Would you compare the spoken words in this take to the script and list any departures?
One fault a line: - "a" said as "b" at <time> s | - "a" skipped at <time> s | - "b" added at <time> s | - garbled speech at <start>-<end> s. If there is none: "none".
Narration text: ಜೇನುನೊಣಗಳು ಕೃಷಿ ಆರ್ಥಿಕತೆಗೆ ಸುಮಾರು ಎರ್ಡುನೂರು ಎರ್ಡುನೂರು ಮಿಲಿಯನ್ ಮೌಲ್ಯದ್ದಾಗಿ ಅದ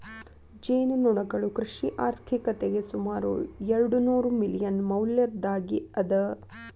- "ಎರ್ಡುನೂರು" skipped at 4.3 s